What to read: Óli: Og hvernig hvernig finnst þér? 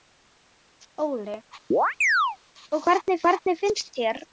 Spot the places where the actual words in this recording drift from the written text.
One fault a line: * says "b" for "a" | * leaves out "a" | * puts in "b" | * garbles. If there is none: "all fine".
all fine